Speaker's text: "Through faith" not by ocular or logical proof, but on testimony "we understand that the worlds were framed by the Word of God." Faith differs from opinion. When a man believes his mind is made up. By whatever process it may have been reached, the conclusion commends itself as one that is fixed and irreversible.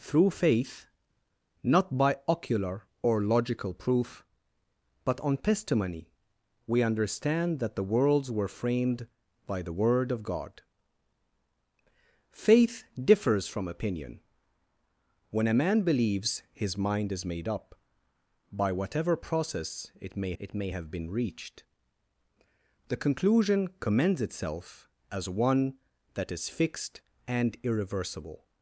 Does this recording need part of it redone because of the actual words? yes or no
yes